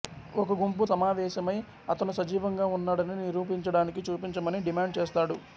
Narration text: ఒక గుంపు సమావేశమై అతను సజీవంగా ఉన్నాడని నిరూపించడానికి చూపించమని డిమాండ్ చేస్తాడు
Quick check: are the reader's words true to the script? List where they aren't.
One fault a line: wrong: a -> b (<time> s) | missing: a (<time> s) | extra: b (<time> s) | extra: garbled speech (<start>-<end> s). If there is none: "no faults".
no faults